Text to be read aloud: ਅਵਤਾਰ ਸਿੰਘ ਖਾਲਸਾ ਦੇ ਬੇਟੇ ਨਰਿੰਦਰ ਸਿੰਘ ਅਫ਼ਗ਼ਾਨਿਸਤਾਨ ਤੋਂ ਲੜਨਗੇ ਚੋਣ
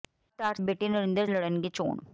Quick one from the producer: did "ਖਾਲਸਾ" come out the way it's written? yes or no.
no